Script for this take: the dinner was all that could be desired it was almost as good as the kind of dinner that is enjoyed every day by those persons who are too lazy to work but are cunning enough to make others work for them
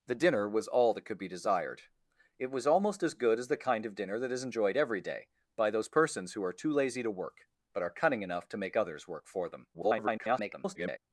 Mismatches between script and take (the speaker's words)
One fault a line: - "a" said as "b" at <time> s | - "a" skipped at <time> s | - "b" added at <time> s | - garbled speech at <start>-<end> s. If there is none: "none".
- garbled speech at 9.7-11.0 s